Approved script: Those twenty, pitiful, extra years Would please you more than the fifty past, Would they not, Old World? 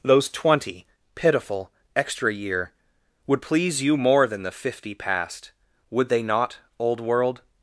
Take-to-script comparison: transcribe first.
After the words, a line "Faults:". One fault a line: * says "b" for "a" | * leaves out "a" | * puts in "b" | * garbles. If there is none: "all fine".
Those twenty, pitiful, extra year Would please you more than the fifty past, Would they not, Old World?
Faults:
* says "year" for "years"